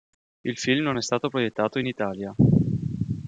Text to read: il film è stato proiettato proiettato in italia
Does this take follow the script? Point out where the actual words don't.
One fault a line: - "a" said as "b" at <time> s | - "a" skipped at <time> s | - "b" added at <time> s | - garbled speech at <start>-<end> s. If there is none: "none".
- "non" added at 0.8 s
- "proiettato" skipped at 1.8 s